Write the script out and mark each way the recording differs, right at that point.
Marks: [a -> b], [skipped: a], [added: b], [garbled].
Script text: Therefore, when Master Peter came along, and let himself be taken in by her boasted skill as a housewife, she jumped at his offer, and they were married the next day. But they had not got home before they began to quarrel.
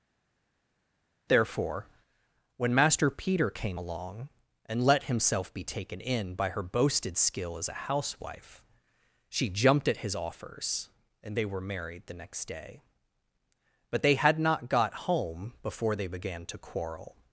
Therefore, when Master Peter came along, and let himself be taken in by her boasted skill as a housewife, she jumped at his [offer, -> offers] and they were married the next day. But they had not got home before they began to quarrel.